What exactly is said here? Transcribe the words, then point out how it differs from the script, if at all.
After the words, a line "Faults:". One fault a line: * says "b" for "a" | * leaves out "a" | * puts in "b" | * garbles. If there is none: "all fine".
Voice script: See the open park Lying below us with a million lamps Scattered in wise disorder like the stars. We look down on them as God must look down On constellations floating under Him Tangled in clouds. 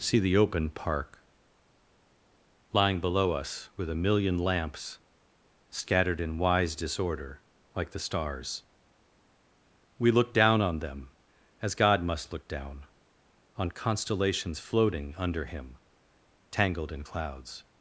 See the open park Lying below us with a million lamps Scattered in wise disorder like the stars. We look down on them as God must look down On constellations floating under Him Tangled in clouds.
Faults:
all fine